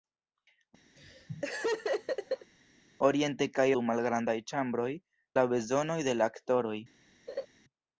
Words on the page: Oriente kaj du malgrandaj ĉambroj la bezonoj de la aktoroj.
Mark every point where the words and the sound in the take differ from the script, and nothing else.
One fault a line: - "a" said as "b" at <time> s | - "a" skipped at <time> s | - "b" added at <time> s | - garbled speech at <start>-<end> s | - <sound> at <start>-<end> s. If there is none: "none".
- laugh at 1.0-2.5 s
- laugh at 7.3-7.5 s